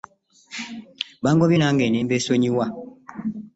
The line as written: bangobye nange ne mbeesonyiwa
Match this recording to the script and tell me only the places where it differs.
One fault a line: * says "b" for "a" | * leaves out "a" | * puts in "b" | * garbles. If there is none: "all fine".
all fine